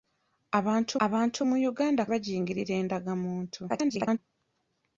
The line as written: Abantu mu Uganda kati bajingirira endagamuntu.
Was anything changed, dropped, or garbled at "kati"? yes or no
yes